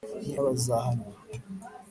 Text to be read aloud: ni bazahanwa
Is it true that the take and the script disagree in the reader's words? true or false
false